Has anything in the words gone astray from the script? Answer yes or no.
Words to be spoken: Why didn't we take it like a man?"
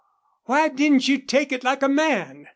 yes